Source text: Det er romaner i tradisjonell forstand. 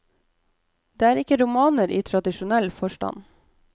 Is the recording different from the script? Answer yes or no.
yes